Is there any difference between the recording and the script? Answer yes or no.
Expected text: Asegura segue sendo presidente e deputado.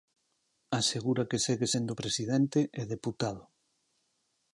yes